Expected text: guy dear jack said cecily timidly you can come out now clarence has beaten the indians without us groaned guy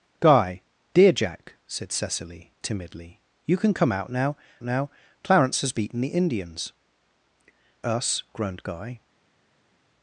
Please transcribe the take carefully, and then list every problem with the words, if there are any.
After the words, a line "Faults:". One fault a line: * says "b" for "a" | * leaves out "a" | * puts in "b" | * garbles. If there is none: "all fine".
guy dear jack said cecily timidly you can come out now now clarence has beaten the indians us groaned guy
Faults:
* puts in "now"
* leaves out "without"